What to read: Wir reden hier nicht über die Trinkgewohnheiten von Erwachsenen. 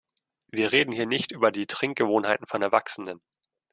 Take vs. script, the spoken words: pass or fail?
pass